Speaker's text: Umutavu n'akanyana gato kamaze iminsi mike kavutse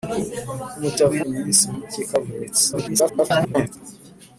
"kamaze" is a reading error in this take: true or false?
true